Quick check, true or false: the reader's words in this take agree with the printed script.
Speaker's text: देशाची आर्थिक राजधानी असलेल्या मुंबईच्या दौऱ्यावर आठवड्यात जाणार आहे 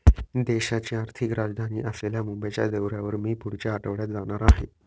false